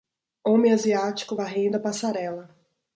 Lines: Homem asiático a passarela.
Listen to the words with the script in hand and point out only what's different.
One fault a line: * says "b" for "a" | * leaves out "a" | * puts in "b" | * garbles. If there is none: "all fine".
* puts in "varrendo"